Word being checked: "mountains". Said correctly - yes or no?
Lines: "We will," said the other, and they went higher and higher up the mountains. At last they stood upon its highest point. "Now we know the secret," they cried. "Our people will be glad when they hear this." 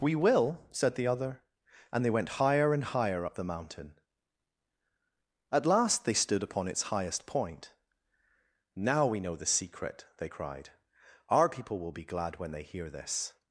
no